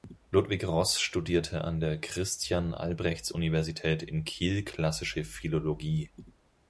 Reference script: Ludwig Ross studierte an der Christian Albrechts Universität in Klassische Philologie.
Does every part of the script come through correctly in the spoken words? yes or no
no